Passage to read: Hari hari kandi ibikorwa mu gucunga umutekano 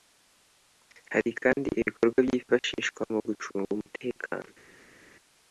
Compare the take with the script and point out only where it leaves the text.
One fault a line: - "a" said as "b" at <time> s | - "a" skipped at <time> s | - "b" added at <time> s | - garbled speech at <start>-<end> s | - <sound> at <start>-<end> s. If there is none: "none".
- "hari" skipped at 1.3 s
- "byifashishwa" added at 2.3 s